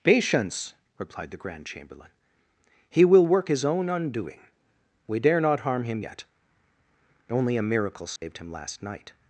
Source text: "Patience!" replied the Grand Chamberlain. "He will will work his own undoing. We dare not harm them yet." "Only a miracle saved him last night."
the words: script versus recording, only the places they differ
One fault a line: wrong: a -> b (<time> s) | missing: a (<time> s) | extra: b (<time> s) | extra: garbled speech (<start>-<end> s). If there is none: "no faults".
missing: will (3.2 s)
wrong: them -> him (5.8 s)